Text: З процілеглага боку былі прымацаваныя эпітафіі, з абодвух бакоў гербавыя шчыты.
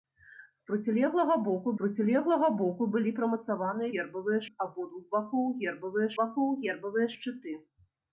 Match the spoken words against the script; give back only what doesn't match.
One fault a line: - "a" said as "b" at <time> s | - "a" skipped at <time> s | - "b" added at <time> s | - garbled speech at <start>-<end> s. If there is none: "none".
- "процілеглага боку" added at 1.8 s
- "эпітафіі" said as "гербавыя" at 4.0 s
- "бакоў гербавыя" added at 6.2 s